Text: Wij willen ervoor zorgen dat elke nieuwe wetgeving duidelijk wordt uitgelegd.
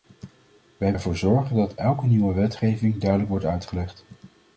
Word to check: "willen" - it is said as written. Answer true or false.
false